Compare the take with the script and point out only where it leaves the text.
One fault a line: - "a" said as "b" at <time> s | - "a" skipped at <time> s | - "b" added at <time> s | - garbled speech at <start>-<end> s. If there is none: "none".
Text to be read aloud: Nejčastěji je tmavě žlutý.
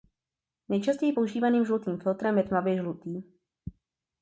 - "používaným žlutým filtrem" added at 1.1 s